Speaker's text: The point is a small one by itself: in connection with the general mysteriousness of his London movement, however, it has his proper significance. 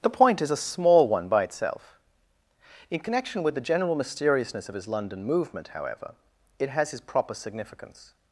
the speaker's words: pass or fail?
pass